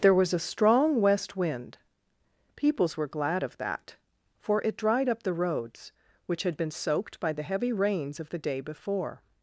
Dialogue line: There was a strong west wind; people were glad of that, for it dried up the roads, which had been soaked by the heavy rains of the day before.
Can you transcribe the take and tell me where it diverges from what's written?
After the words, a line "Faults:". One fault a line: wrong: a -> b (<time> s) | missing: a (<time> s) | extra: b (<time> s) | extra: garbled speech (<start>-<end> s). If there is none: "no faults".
There was a strong west wind; peoples were glad of that, for it dried up the roads, which had been soaked by the heavy rains of the day before.
Faults:
wrong: people -> peoples (2.5 s)